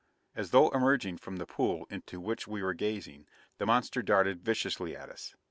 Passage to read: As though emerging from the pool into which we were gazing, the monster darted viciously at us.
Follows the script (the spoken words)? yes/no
yes